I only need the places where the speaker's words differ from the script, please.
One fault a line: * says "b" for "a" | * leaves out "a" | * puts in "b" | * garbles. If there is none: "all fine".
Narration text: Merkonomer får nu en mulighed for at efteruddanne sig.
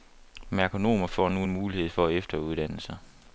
all fine